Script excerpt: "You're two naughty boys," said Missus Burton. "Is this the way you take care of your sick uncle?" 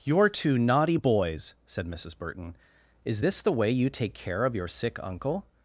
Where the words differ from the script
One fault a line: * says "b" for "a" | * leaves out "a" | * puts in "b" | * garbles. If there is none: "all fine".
all fine